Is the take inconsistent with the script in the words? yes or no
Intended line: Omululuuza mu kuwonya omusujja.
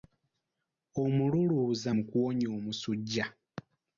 no